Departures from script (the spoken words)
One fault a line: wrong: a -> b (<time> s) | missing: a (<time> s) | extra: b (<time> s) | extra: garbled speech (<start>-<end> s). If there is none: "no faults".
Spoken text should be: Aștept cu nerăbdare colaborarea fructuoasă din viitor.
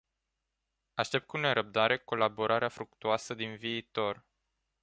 no faults